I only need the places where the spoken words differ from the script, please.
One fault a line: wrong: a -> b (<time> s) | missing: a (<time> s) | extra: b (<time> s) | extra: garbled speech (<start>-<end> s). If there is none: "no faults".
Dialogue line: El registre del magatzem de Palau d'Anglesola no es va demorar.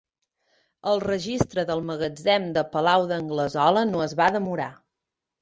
no faults